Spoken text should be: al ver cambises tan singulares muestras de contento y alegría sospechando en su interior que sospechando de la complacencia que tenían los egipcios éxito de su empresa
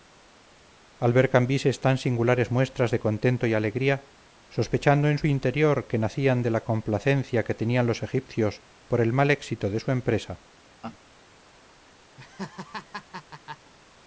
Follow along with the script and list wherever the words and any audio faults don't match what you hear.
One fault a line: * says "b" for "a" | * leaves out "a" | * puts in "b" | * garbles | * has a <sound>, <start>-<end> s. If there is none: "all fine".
* says "nacían" for "sospechando"
* puts in "por el mal"
* has a laugh, 10.8-11.0 s
* has a laugh, 12.2-13.7 s